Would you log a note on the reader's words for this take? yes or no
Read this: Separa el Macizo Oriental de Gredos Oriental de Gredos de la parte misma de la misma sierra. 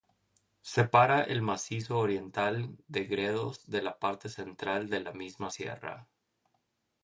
yes